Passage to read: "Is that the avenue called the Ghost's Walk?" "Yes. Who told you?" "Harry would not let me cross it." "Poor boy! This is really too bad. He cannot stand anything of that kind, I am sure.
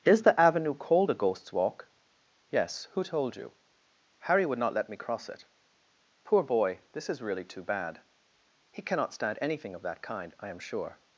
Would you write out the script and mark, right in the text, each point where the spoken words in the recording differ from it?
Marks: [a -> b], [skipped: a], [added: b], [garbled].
"Is [skipped: that] the avenue called [the -> a] Ghost's Walk?" "Yes. Who told you?" "Harry would not let me cross it." "Poor boy! This is really too bad. He cannot stand anything of that kind, I am sure.